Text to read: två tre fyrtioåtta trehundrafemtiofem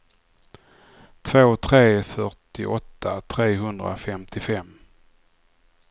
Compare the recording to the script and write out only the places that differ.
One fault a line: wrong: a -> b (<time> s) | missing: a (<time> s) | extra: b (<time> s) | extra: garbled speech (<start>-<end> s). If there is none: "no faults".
no faults